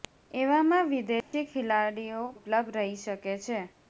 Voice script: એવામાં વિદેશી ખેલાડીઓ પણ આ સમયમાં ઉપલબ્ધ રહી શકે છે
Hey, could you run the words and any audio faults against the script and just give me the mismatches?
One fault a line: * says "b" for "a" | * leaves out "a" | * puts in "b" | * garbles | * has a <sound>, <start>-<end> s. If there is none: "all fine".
* has a dropout, 1.2-1.3 s
* leaves out "પણ આ સમયમાં"